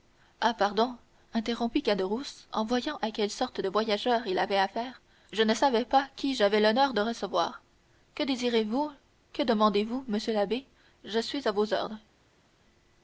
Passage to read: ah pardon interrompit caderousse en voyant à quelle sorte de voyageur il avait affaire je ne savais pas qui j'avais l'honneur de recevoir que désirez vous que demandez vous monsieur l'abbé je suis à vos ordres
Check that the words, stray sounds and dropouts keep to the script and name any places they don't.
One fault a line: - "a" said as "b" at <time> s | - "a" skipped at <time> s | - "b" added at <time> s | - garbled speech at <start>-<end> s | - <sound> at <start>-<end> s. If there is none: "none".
none